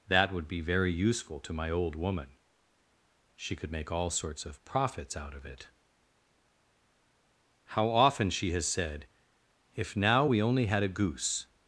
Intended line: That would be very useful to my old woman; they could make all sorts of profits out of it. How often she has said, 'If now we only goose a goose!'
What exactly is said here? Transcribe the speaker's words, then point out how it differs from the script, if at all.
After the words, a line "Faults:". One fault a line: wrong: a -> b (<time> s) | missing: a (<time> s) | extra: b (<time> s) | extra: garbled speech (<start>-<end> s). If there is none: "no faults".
That would be very useful to my old woman; she could make all sorts of profits out of it. How often she has said, 'If now we only had a goose!'
Faults:
wrong: they -> she (3.4 s)
wrong: goose -> had (10.7 s)